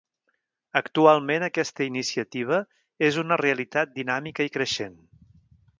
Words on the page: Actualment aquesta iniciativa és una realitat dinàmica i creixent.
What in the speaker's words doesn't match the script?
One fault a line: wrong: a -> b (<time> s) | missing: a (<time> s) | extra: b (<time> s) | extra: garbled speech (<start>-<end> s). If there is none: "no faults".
no faults